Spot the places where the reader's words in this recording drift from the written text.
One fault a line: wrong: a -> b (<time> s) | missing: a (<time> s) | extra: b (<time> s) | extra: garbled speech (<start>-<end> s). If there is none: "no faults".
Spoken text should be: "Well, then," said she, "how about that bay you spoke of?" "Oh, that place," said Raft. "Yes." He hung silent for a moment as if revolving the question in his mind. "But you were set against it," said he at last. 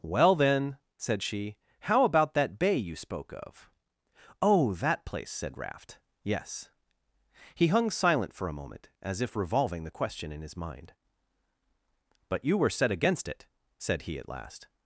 no faults